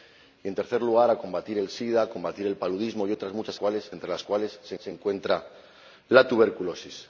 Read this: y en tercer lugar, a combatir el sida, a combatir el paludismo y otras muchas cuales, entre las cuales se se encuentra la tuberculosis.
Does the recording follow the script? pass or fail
pass